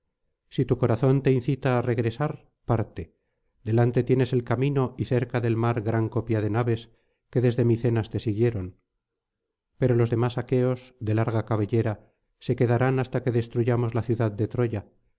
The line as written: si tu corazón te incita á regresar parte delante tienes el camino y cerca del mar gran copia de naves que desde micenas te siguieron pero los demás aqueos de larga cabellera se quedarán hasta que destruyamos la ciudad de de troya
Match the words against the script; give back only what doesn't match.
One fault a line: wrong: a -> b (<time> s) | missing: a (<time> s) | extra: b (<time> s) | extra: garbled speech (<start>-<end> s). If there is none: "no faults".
missing: de (14.5 s)